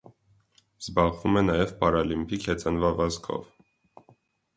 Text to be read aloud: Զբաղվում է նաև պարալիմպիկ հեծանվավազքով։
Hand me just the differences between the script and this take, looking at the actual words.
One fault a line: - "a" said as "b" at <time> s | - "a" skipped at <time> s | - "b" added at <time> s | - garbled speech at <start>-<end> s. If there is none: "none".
none